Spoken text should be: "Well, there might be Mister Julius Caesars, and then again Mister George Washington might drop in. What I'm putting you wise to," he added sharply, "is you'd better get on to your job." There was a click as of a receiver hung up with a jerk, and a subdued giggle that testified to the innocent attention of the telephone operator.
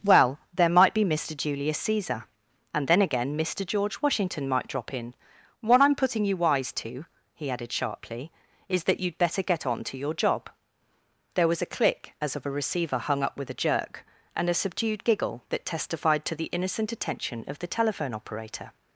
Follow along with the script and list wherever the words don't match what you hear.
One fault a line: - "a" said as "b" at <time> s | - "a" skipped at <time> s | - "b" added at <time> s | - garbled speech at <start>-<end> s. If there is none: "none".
- "Caesars" said as "Caesar" at 1.8 s
- "that" added at 8.8 s